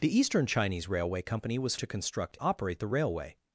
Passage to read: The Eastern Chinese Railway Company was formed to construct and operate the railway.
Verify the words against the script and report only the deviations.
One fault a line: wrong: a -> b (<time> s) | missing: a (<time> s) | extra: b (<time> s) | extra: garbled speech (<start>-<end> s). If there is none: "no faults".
missing: formed (1.8 s)
missing: and (2.4 s)